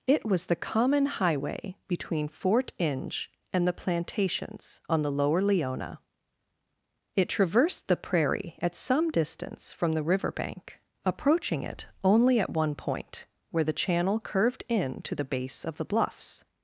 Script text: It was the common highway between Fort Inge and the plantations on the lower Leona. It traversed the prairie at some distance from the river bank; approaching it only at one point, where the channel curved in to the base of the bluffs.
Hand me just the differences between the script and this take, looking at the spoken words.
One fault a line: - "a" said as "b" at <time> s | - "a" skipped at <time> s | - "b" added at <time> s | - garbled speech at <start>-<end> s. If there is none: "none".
none